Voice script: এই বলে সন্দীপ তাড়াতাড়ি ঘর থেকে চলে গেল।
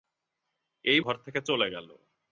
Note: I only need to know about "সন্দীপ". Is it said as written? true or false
false